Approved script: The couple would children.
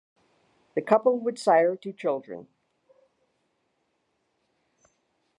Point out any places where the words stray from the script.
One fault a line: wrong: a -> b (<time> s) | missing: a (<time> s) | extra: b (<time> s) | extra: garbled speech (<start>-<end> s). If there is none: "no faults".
extra: sire two (1.4 s)